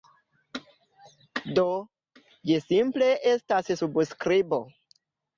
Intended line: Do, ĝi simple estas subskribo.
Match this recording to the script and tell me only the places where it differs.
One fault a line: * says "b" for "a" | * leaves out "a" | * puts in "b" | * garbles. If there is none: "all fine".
all fine